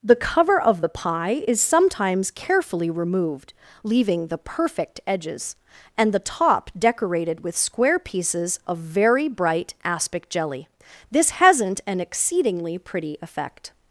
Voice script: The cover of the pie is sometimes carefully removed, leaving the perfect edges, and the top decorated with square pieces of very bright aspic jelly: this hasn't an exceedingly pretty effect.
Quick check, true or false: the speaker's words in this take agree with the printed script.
true